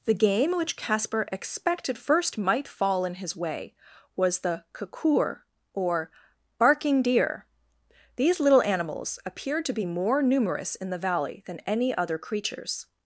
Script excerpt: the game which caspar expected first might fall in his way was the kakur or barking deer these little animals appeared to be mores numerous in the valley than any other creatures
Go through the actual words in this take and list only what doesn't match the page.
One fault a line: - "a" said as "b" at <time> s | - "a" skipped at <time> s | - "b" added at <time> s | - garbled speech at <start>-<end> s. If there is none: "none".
- "mores" said as "more" at 9.8 s